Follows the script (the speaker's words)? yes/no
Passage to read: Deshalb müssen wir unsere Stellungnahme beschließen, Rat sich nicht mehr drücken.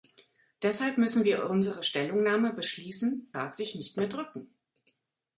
yes